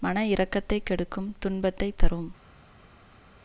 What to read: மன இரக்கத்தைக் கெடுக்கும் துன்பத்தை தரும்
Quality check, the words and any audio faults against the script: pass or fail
pass